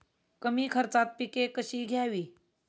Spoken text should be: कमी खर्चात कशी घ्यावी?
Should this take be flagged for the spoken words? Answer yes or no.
yes